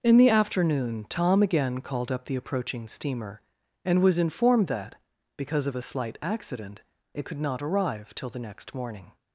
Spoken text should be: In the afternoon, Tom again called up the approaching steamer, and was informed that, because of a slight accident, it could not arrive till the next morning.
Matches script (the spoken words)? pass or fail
pass